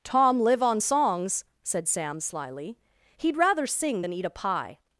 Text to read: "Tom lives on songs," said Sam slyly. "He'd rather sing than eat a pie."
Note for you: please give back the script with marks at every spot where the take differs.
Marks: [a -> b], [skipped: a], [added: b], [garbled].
"Tom [lives -> live] on songs," said Sam slyly. "He'd rather sing than eat a pie."